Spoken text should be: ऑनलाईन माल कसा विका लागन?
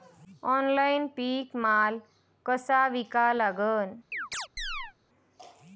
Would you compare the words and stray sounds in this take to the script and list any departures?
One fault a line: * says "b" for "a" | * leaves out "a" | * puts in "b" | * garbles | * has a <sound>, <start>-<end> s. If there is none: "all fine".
* puts in "पीक"
* has a chirp, 4.1-4.9 s